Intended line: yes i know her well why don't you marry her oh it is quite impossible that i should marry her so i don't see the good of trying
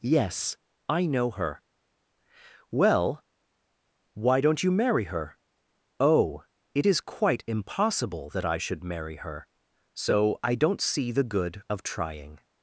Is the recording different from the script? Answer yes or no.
no